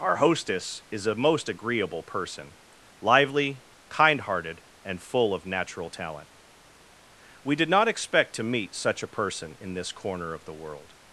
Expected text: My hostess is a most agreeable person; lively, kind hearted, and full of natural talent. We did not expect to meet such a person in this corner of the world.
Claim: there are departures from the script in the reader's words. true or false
true